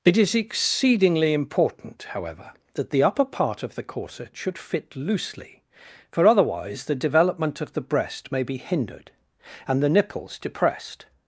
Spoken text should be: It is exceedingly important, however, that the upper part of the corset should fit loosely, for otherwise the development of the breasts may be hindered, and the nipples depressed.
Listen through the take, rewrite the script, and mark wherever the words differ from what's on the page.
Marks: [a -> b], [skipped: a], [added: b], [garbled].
It is exceedingly important, however, that the upper part of the corset should fit loosely, for otherwise the development of the [breasts -> breast] may be hindered, and the nipples depressed.